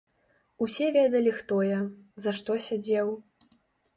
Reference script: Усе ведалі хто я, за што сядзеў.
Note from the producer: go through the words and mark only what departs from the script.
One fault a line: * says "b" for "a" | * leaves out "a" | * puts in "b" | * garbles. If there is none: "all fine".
all fine